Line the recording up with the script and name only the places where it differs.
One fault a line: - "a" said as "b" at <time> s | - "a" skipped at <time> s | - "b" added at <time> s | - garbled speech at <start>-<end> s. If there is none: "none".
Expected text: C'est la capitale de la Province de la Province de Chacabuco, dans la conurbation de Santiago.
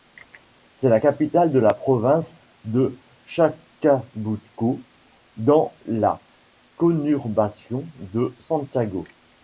- "la Province de" skipped at 3.0 s